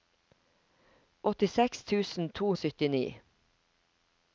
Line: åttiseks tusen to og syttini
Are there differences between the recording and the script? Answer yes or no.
no